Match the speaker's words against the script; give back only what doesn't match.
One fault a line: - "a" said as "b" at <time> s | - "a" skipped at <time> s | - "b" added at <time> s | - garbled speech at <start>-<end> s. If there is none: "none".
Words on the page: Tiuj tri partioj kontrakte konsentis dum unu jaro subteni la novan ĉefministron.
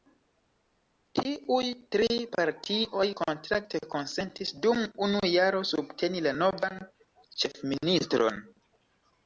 none